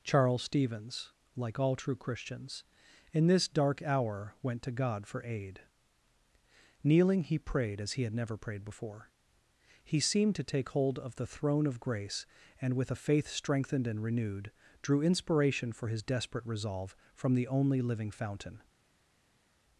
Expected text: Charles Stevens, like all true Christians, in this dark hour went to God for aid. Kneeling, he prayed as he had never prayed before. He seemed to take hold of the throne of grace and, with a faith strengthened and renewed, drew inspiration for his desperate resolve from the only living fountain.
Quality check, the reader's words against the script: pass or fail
pass